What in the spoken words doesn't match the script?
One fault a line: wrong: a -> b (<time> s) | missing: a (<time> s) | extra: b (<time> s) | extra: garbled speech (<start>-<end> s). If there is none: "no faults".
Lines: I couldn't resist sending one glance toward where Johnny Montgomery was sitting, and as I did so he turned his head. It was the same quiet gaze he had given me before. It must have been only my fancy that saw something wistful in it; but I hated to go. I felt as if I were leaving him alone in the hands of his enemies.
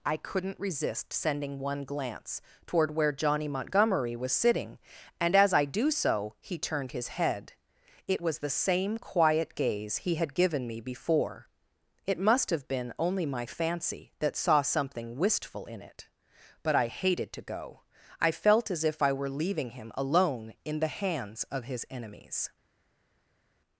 wrong: did -> do (5.7 s)